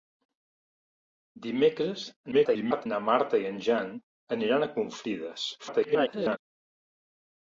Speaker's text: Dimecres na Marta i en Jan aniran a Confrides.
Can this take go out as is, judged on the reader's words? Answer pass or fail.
fail